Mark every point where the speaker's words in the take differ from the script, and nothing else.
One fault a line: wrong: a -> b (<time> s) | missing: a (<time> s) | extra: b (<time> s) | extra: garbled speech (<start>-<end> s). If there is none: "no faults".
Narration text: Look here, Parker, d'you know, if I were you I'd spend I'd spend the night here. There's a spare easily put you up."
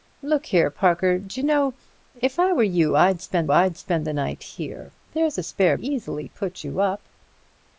no faults